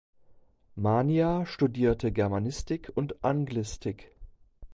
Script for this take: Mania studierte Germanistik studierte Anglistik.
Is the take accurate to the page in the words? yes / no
no